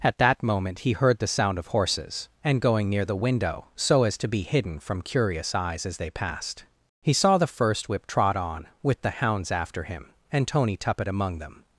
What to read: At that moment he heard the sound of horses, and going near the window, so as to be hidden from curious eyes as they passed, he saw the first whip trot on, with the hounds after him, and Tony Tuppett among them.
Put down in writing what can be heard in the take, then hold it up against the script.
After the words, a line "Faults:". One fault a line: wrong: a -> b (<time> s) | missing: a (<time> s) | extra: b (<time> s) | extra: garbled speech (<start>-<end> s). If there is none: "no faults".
At that moment he heard the sound of horses, and going near the window, so as to be hidden from curious eyes as they passed, he saw the first whip trot on, with the hounds after him, and Tony Tuppett among them.
Faults:
no faults